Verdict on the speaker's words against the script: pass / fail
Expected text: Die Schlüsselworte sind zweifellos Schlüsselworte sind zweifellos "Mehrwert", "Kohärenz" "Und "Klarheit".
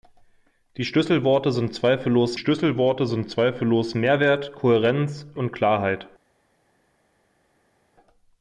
pass